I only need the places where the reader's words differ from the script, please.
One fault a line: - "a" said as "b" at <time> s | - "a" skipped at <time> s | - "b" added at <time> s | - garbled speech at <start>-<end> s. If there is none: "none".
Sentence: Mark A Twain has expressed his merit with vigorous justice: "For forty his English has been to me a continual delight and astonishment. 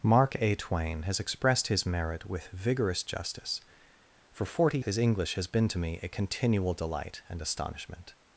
none